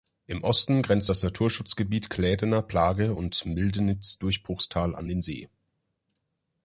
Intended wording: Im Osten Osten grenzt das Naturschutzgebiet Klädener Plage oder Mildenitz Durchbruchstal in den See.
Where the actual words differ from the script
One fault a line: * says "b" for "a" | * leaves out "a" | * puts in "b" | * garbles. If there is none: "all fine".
* leaves out "Osten"
* says "und" for "oder"
* says "an" for "in"